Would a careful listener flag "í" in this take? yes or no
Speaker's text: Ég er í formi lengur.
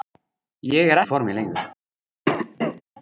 no